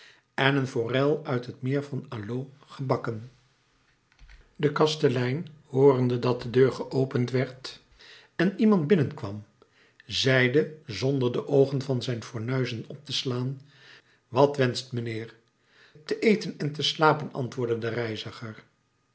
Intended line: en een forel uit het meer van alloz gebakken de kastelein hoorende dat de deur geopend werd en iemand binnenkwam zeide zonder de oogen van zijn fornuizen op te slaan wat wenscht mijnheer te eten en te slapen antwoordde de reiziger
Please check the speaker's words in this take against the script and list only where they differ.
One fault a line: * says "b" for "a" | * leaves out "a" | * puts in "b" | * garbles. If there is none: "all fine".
all fine